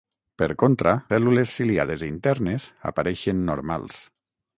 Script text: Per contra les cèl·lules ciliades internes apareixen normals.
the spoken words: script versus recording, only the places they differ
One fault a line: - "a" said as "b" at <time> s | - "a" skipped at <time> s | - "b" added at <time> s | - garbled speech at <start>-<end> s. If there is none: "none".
- "les" skipped at 0.9 s